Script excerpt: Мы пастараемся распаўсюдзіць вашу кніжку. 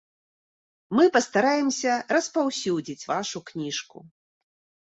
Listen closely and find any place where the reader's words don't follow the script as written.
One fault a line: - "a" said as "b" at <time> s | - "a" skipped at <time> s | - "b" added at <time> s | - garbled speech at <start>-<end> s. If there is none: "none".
none